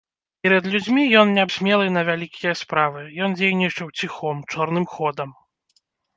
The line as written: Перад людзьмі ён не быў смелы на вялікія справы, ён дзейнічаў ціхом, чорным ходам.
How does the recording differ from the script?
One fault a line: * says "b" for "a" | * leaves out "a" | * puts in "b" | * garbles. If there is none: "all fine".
* leaves out "быў"